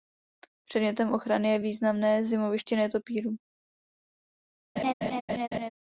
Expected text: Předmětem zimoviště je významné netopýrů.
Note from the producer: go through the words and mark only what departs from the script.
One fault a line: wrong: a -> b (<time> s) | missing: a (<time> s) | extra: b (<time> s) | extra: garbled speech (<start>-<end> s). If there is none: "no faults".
wrong: zimoviště -> ochrany (1.1 s)
extra: zimoviště (2.2 s)